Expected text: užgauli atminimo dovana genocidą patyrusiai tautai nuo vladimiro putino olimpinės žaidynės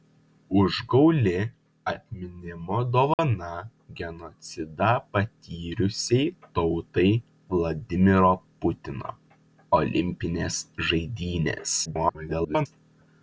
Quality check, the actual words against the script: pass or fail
fail